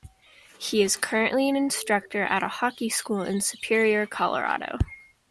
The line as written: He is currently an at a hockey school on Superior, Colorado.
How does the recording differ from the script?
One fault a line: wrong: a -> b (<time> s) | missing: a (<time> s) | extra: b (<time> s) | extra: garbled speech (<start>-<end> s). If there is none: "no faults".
extra: instructor (1.6 s)
wrong: on -> in (3.2 s)